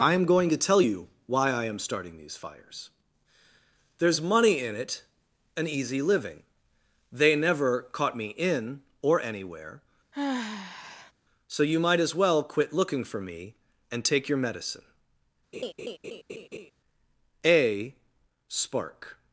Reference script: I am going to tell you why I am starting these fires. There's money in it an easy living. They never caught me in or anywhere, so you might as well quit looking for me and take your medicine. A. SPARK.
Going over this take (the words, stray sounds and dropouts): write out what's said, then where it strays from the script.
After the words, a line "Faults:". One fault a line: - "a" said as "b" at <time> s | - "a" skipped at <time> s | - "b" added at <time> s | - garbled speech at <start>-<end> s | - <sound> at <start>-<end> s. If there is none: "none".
I am going to tell you why I am starting these fires. There's money in it an easy living. They never caught me in or anywhere, so you might as well quit looking for me and take your medicine. A. SPARK.
Faults:
- sigh at 10.1-11.1 s
- laugh at 15.5-16.7 s